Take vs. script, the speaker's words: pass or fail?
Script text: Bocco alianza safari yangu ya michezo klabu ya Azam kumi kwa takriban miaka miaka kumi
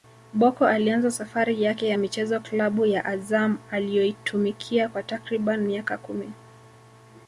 fail